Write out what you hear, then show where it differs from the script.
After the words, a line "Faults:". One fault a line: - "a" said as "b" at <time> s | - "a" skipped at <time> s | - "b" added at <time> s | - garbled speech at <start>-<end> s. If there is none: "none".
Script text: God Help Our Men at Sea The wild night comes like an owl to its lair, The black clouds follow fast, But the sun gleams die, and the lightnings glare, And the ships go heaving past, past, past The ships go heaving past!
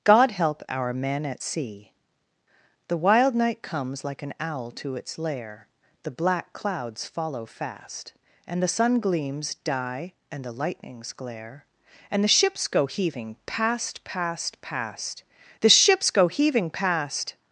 God Help Our Men at Sea The wild night comes like an owl to its lair, The black clouds follow fast, And the sun gleams die, and the lightnings glare, And the ships go heaving past, past, past The ships go heaving past!
Faults:
- "But" said as "And" at 8.5 s